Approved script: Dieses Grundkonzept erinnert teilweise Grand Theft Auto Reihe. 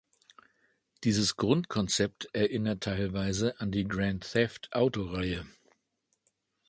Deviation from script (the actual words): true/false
true